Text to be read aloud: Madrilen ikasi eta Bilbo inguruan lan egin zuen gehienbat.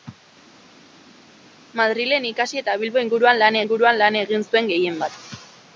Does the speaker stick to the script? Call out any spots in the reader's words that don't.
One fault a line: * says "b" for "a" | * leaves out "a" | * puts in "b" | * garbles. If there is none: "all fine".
* puts in "inguruan lan"